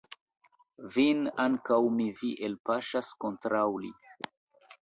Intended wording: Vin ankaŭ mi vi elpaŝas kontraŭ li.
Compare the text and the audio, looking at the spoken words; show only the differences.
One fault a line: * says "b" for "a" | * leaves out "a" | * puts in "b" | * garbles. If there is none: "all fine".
all fine